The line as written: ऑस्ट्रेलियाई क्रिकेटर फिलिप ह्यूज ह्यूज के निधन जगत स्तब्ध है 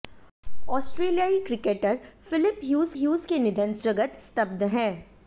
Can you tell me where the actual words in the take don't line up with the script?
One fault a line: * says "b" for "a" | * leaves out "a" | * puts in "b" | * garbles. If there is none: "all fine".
all fine